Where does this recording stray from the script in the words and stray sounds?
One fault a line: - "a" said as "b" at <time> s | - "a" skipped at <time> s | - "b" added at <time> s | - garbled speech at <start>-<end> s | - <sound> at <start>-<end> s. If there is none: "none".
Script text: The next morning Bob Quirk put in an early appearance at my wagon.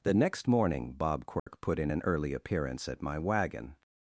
- dropout at 1.4-1.5 s